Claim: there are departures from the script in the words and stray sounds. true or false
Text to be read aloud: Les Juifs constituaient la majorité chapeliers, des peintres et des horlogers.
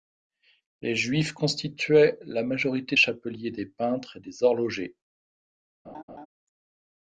true